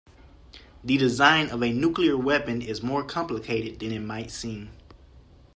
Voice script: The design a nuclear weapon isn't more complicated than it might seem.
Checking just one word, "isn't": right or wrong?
wrong